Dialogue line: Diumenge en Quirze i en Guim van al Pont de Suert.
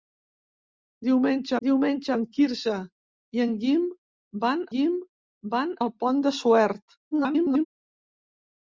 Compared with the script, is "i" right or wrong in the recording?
right